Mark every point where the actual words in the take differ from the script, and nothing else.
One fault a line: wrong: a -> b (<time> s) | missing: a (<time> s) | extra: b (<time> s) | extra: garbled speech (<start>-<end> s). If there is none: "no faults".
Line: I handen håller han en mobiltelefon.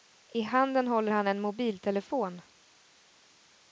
no faults